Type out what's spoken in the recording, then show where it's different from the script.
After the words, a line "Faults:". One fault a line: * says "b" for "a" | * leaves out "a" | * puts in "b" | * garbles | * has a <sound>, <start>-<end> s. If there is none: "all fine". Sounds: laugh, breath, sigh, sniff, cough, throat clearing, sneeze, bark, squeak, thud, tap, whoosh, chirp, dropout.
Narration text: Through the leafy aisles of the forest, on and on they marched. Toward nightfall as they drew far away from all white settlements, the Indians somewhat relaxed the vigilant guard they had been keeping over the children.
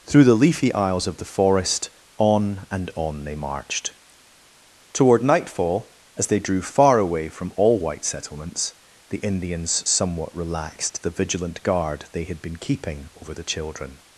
Through the leafy aisles of the forest, on and on they marched. Toward nightfall as they drew far away from all white settlements, the Indians somewhat relaxed the vigilant guard they had been keeping over the children.
Faults:
all fine